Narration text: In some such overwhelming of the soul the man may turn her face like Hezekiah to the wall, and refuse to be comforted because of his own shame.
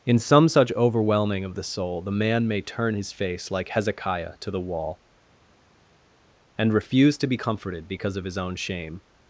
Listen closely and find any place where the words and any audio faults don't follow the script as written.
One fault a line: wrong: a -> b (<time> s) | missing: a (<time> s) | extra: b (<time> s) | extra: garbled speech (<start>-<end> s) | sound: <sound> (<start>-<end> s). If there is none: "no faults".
wrong: her -> his (3.0 s)